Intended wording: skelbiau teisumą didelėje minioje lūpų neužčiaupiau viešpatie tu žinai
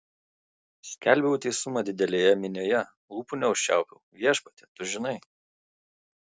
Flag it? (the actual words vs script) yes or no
no